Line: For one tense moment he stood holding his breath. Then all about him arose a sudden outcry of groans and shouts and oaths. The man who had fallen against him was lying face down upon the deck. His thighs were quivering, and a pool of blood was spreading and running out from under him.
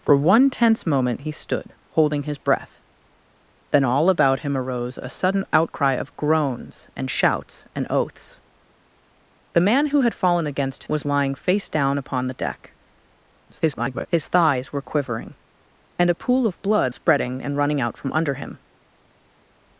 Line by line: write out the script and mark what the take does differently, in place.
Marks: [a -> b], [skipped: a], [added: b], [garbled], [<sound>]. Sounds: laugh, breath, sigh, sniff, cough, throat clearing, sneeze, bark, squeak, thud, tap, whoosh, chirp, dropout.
For one tense moment he stood holding his breath. Then all about him arose a sudden outcry of groans and shouts and oaths. The man who had fallen against [skipped: him] was lying face down upon the deck. [garbled] His thighs were quivering, and a pool of blood [skipped: was] spreading and running out from under him.